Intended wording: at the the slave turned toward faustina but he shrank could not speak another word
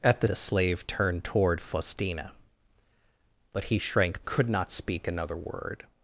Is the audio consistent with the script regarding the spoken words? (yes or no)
yes